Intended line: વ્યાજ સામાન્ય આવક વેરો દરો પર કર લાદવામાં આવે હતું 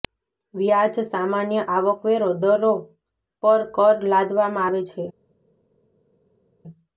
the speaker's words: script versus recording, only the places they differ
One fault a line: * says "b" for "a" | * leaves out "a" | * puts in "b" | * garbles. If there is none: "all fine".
* says "છે" for "હતું"